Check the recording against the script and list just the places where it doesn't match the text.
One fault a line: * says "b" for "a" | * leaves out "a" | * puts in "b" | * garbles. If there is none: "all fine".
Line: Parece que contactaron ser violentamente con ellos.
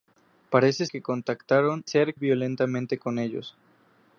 all fine